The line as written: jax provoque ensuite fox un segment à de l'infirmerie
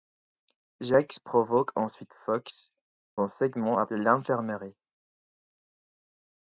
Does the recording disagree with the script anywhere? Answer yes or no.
no